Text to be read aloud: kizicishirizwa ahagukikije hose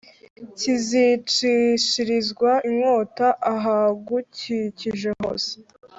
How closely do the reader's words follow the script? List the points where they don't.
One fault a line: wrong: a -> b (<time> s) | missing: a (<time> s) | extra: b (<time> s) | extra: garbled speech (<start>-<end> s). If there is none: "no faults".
extra: inkota (2.7 s)